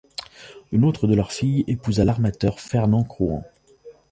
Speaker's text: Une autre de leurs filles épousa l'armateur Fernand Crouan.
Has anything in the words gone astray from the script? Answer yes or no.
no